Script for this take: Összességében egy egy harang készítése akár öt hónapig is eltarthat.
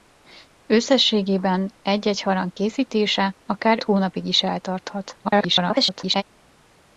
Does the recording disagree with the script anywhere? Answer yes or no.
yes